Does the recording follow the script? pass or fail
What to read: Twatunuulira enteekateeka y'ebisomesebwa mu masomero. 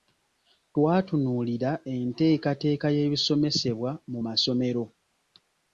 pass